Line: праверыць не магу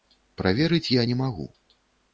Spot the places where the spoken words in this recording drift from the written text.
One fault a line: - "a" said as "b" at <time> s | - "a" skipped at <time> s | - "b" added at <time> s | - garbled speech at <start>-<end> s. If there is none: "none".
- "я" added at 0.9 s